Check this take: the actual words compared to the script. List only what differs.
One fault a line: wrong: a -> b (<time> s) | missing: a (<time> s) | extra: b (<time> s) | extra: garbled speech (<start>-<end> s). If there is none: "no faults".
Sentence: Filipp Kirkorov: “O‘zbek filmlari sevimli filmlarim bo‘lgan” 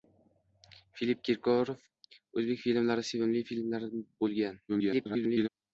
extra: garbled speech (4.7-5.5 s)